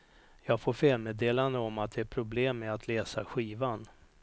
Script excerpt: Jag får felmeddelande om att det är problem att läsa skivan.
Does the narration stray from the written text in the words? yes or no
yes